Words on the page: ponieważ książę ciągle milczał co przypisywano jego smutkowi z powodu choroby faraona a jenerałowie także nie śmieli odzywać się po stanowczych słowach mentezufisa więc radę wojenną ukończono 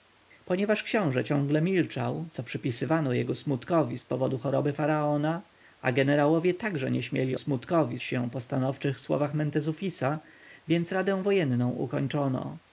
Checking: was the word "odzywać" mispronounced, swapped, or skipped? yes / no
yes